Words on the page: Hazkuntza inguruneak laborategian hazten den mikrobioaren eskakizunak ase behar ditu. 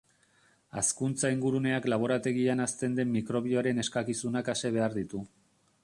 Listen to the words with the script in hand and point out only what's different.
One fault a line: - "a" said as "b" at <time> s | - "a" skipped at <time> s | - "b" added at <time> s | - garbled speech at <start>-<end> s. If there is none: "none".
none